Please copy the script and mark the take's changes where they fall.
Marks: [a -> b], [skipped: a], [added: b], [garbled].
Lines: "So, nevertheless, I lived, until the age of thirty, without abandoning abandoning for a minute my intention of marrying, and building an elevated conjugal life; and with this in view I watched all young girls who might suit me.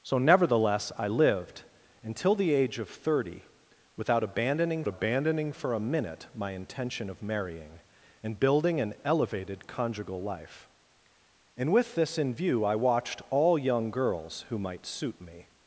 "So, nevertheless, I lived, until the age of thirty, without abandoning abandoning for a minute my intention of marrying, and building an elevated conjugal life; and with this in view I watched all young girls who might suit me.